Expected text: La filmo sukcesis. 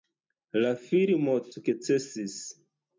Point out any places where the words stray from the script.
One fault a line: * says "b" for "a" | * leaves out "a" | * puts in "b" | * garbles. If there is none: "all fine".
all fine